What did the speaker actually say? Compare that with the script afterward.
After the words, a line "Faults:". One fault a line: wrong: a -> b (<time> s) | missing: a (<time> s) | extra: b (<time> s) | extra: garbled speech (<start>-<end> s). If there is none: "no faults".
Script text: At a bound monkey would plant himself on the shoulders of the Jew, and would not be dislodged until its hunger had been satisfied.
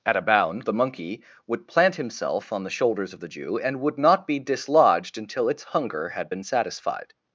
At a bound the monkey would plant himself on the shoulders of the Jew, and would not be dislodged until its hunger had been satisfied.
Faults:
extra: the (0.6 s)